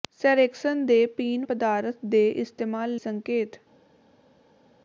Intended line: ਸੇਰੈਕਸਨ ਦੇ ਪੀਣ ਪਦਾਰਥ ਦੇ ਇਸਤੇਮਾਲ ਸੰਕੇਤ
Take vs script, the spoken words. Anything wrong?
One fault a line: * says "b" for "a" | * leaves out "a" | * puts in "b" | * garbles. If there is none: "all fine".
all fine